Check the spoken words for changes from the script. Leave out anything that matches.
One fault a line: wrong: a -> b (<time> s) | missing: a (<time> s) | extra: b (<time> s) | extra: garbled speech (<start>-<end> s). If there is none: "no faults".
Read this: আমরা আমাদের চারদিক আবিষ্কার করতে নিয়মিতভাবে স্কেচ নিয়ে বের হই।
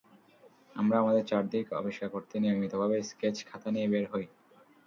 extra: খাতা (3.5 s)